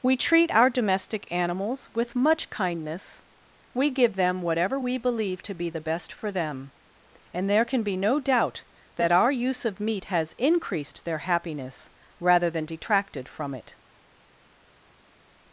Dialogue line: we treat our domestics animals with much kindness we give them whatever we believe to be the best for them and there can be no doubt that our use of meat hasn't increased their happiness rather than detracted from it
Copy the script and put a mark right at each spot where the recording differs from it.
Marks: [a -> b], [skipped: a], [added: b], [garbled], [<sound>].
we treat our [domestics -> domestic] animals with much kindness we give them whatever we believe to be the best for them and there can be no doubt that our use of meat [hasn't -> has] increased their happiness rather than detracted from it